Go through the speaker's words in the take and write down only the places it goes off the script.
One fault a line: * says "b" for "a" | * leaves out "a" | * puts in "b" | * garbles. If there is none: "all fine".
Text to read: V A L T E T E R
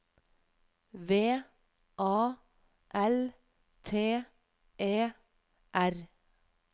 * leaves out "T E"